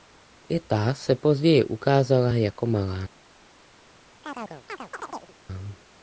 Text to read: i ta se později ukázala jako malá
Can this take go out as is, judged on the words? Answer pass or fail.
pass